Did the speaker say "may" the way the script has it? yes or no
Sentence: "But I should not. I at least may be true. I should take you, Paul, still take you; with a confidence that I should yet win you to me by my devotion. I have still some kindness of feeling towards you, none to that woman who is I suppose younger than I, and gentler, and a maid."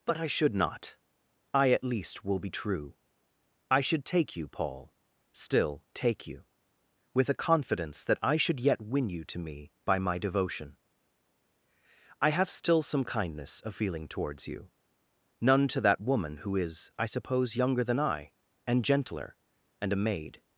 no